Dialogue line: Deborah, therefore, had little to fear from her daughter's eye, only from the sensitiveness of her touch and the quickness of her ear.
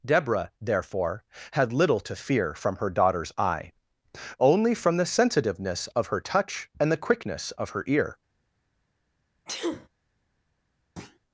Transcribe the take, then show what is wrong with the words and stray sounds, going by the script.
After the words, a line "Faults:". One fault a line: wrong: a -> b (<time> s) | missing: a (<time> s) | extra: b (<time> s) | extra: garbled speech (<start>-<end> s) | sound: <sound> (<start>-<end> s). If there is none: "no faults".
Deborah, therefore, had little to fear from her daughter's eye, only from the sensitiveness of her touch and the quickness of her ear.
Faults:
sound: sneeze (9.5-9.9 s)
sound: thud (11.0-11.2 s)